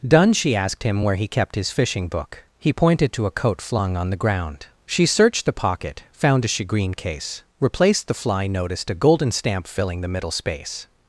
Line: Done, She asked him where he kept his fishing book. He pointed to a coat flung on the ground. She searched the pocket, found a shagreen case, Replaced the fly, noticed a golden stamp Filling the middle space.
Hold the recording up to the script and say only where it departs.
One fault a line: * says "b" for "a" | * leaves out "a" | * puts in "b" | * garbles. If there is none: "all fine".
all fine